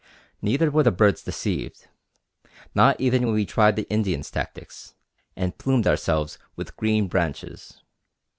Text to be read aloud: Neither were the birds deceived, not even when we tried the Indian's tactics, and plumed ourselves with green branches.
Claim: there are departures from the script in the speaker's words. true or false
false